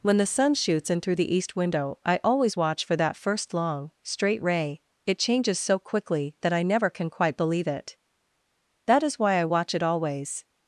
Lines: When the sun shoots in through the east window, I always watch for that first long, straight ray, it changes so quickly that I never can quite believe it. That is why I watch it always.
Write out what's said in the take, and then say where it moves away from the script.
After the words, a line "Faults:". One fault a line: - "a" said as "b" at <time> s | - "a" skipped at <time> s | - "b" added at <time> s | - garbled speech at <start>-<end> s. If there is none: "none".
When the sun shoots in through the east window, I always watch for that first long, straight ray, it changes so quickly that I never can quite believe it. That is why I watch it always.
Faults:
none